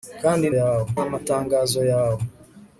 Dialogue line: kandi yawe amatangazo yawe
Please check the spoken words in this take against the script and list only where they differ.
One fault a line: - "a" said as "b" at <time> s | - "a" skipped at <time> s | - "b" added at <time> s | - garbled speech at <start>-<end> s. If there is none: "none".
none